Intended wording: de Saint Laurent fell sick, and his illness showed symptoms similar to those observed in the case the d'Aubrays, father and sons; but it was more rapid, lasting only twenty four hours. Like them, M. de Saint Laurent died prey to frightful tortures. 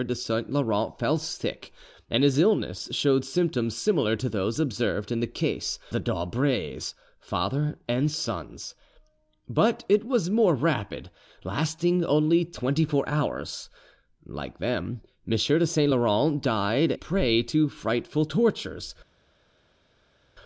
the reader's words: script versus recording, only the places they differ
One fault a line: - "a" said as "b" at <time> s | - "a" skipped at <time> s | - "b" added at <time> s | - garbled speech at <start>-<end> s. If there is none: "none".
none